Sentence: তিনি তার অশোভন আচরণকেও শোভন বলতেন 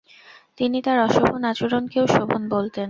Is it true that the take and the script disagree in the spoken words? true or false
false